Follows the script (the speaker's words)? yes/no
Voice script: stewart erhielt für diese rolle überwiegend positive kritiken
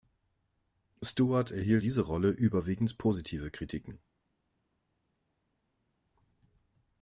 no